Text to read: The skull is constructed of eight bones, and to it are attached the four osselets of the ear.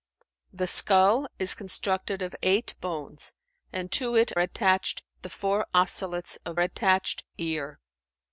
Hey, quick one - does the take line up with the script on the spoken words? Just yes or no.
no